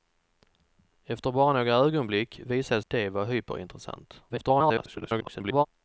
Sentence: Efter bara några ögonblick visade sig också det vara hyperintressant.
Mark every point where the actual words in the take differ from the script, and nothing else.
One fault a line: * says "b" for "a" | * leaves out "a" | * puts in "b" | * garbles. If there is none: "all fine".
* leaves out "sig också"
* garbles